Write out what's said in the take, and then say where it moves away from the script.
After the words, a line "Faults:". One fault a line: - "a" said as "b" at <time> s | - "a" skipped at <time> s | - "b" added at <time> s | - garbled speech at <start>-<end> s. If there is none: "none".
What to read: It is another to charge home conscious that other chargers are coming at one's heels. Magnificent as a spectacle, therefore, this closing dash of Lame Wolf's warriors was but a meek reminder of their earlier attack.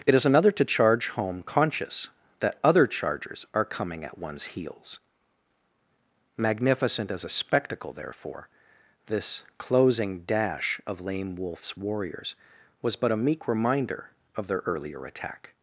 It is another to charge home conscious that other chargers are coming at one's heels. Magnificent as a spectacle, therefore, this closing dash of Lame Wolf's warriors was but a meek reminder of their earlier attack.
Faults:
none